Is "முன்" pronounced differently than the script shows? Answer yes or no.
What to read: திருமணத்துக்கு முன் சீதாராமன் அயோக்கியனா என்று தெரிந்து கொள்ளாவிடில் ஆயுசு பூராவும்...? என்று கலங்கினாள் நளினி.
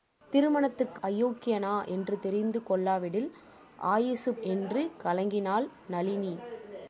yes